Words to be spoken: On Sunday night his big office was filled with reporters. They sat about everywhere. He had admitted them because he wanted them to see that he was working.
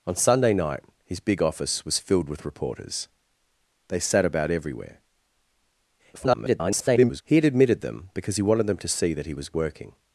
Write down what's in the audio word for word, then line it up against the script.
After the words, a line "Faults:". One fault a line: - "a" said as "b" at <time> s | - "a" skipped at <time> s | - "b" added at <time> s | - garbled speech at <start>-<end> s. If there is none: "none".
On Sunday night his big office was filled with reporters. They sat about everywhere. [garbled] He had admitted them because he wanted them to see that he was working.
Faults:
- garbled speech at 6.1-7.2 s